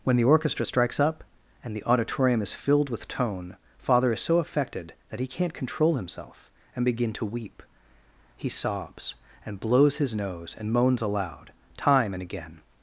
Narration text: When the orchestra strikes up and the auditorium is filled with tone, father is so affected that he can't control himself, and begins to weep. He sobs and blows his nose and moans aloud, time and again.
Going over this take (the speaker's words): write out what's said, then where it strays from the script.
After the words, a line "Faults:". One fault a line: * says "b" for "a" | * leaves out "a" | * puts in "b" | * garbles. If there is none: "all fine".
When the orchestra strikes up and the auditorium is filled with tone, father is so affected that he can't control himself, and begin to weep. He sobs and blows his nose and moans aloud, time and again.
Faults:
* says "begin" for "begins"